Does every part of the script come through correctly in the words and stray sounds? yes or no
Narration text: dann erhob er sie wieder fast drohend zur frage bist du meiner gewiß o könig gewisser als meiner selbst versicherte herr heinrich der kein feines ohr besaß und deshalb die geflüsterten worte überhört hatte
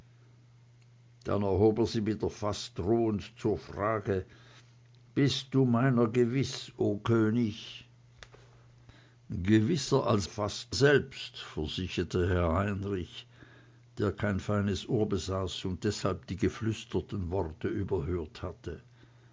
no